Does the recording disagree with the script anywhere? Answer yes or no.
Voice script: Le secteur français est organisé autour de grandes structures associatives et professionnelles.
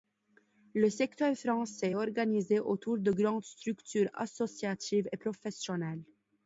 no